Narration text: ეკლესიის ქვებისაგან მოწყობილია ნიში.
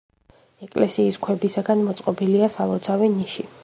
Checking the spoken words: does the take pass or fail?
fail